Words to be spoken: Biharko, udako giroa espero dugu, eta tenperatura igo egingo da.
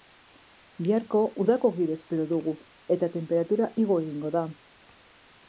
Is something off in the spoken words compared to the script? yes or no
no